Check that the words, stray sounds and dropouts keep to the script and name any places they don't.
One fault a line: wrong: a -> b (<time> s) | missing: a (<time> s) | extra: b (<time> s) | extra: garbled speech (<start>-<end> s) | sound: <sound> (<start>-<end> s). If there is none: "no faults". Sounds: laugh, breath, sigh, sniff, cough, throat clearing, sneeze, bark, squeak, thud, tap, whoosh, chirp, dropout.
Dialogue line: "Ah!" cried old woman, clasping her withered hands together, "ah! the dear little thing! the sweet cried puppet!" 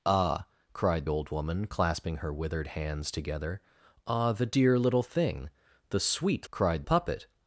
no faults